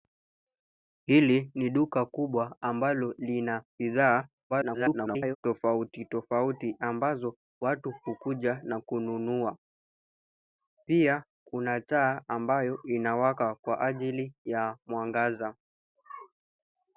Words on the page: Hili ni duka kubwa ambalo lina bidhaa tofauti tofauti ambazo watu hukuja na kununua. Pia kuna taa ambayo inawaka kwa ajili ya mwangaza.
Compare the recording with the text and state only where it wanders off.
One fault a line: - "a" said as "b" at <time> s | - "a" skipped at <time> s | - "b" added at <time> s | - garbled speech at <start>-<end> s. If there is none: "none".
- garbled speech at 4.5-5.4 s